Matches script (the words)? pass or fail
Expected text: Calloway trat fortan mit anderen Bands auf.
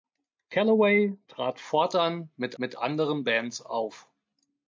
fail